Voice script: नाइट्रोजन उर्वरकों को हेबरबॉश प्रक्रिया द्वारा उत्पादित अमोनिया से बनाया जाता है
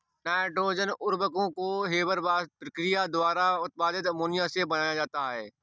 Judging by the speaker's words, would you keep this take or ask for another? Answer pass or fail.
pass